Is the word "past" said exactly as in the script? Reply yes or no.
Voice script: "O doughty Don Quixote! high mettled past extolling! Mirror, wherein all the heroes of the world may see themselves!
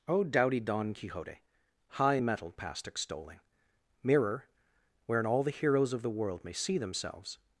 yes